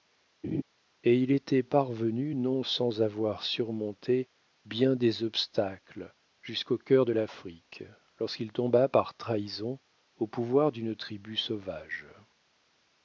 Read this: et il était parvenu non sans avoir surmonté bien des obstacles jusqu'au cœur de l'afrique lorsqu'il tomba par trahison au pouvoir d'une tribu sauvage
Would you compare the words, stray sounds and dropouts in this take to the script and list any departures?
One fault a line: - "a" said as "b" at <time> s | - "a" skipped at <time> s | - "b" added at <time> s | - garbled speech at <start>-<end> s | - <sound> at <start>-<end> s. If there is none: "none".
- laugh at 0.4-0.6 s